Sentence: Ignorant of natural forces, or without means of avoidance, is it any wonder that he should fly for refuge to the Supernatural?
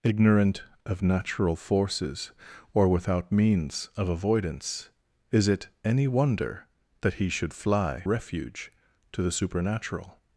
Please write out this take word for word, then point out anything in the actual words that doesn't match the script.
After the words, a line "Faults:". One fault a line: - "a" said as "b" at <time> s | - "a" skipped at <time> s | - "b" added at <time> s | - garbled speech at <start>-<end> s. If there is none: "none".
Ignorant of natural forces, or without means of avoidance, is it any wonder that he should fly refuge to the Supernatural?
Faults:
- "for" skipped at 8.1 s